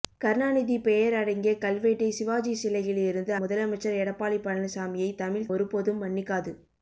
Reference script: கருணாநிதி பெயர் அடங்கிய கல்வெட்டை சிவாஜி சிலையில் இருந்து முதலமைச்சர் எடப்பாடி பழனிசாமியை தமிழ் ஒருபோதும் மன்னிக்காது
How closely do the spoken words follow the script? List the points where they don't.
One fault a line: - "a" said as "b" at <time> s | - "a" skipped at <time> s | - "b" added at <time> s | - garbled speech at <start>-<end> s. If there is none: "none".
none